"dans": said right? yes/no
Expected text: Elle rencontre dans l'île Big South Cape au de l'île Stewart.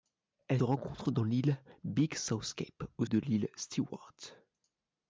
yes